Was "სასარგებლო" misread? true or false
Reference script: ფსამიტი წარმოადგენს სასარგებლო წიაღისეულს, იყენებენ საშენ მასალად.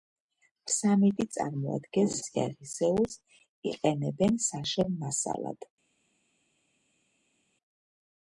true